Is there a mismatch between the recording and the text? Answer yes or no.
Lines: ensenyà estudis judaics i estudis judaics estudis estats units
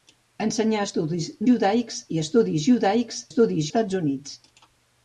no